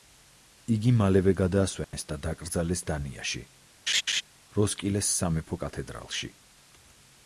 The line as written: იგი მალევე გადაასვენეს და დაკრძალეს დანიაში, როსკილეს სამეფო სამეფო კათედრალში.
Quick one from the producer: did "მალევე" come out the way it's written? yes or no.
yes